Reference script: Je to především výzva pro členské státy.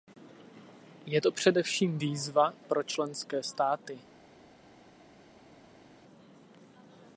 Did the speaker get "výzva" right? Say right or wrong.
right